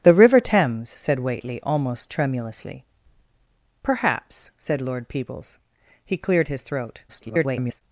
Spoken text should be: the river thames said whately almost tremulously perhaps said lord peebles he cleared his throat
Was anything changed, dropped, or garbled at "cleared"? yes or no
no